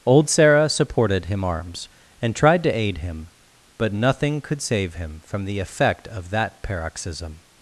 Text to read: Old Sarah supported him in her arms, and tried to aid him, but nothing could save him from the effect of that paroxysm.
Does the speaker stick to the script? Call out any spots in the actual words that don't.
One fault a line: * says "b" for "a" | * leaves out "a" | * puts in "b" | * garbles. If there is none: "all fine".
* leaves out "in her"